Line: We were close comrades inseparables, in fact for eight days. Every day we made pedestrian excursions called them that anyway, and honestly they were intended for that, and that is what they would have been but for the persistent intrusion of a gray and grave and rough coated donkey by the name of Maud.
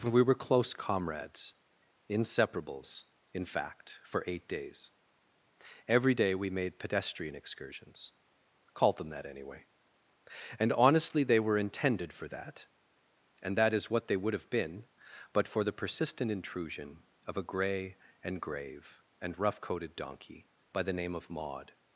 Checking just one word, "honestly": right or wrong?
right